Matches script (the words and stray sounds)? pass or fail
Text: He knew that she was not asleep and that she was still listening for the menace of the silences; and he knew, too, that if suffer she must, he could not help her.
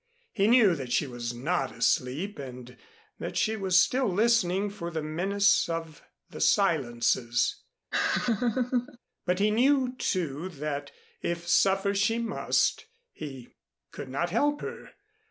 fail